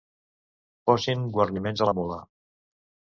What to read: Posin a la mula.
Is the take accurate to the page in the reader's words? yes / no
no